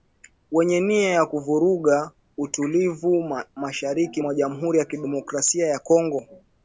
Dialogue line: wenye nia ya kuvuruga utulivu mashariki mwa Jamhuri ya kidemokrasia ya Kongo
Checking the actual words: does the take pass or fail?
pass